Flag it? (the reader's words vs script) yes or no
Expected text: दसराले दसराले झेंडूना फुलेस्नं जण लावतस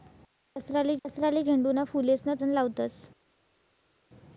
no